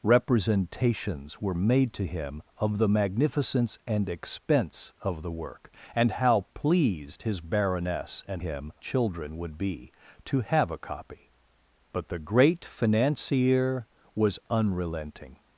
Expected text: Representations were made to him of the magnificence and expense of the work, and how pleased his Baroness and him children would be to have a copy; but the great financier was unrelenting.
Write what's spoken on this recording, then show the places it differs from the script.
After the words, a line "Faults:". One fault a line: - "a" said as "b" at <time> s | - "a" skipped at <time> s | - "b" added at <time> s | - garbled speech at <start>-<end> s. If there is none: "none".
Representations were made to him of the magnificence and expense of the work, and how pleased his Baroness and him children would be to have a copy; but the great financier was unrelenting.
Faults:
none